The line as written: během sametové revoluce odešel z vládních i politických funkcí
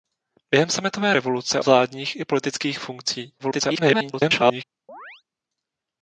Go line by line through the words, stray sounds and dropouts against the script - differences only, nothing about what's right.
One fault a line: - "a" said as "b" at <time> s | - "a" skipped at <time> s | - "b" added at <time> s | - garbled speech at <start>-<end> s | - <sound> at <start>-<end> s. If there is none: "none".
- "odešel" skipped at 1.6 s
- garbled speech at 3.4-4.6 s
- chirp at 4.9-5.2 s